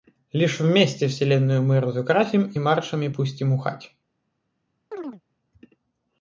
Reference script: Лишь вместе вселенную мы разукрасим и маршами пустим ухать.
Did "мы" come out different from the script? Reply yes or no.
no